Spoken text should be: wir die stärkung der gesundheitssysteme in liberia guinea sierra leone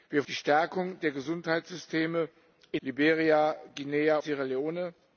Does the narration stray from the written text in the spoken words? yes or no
no